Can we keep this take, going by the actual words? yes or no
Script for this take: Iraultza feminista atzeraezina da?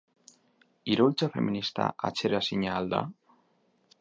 no